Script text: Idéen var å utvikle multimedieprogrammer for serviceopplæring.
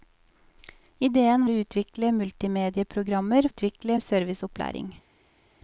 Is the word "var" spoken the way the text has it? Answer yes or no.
no